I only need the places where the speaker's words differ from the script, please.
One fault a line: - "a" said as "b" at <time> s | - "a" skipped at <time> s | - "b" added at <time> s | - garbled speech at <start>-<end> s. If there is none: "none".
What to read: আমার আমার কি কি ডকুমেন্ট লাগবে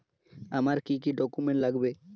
- "আমার" skipped at 0.8 s